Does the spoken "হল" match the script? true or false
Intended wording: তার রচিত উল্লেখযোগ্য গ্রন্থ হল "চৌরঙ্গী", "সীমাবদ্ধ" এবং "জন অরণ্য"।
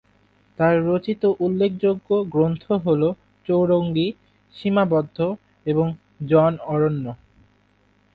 true